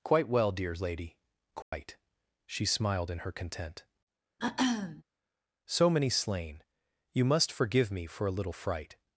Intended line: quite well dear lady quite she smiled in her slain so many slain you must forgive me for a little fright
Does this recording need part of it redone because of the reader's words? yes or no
yes